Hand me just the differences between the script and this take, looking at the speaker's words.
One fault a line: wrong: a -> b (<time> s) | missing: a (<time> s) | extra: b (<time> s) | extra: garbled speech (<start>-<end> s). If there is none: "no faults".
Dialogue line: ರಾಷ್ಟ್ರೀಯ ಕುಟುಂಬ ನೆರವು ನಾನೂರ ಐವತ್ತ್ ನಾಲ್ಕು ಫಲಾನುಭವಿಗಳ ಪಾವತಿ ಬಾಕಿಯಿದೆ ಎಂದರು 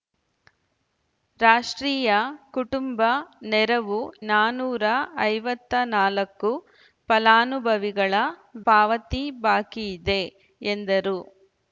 no faults